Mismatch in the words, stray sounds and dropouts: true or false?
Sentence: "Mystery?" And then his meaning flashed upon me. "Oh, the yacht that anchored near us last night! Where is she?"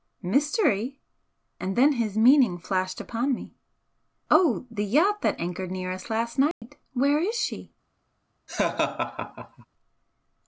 true